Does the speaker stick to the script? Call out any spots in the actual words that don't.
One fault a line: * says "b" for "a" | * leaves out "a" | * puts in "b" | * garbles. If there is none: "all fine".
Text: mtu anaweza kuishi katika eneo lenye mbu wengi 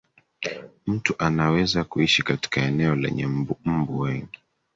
all fine